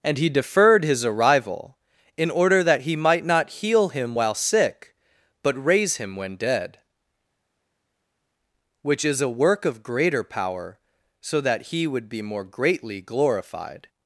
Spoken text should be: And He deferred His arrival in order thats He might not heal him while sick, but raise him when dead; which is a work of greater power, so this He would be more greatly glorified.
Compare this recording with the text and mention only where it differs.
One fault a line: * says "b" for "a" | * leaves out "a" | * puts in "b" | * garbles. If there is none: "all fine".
* says "that" for "thats"
* says "that" for "this"